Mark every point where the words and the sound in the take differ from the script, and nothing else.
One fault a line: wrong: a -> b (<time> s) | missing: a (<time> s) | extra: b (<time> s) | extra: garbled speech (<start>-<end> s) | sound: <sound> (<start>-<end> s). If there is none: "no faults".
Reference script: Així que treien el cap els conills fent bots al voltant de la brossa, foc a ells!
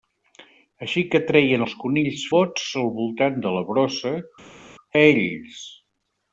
missing: el cap (1.6 s)
missing: fent (2.2 s)
missing: foc (4.2 s)